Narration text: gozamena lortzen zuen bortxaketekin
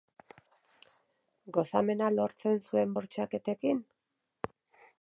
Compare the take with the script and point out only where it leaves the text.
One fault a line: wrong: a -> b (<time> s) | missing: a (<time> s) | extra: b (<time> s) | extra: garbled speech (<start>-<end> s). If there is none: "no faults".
no faults